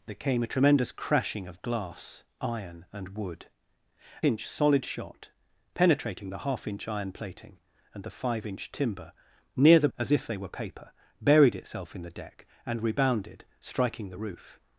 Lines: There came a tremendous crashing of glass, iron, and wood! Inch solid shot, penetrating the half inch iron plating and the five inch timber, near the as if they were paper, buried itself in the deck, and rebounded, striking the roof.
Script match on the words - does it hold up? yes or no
yes